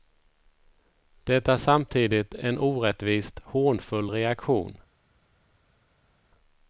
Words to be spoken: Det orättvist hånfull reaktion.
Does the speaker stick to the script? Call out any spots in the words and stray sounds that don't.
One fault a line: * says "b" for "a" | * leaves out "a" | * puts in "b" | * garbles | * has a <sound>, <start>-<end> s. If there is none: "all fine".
* puts in "är samtidigt en"